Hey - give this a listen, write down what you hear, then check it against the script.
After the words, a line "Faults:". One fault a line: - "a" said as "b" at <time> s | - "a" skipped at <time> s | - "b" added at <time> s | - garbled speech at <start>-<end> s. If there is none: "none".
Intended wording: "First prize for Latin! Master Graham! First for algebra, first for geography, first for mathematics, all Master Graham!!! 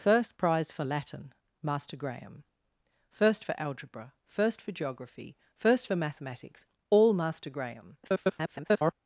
"First prize for Latin! Master Graham! First for algebra, first for geography, first for mathematics, all Master Graham!!! [garbled]
Faults:
- garbled speech at 8.0-8.9 s